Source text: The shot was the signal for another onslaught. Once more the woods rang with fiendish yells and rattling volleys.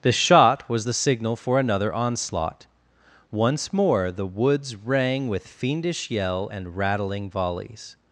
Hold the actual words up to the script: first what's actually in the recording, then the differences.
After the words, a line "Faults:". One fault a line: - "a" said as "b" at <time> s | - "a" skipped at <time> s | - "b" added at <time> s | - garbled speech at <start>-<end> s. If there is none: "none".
The shot was the signal for another onslaught. Once more the woods rang with fiendish yell and rattling volleys.
Faults:
- "yells" said as "yell" at 6.1 s